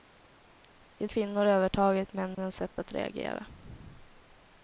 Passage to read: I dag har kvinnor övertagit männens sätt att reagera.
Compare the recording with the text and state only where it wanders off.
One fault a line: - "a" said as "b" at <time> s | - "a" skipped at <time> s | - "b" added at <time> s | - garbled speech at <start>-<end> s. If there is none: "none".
- "dag har" skipped at 1.1 s